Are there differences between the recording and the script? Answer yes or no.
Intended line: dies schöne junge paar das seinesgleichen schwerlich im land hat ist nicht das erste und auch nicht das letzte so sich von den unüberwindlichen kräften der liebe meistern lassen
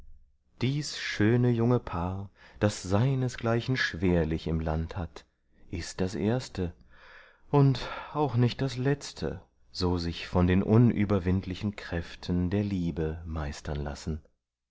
yes